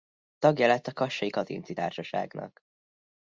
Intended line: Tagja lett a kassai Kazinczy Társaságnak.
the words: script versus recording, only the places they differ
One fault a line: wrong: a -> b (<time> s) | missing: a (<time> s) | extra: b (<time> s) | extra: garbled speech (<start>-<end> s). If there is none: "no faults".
no faults